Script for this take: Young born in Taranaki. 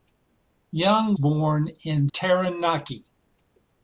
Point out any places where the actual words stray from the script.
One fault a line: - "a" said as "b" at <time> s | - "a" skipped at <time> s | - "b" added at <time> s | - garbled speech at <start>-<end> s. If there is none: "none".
none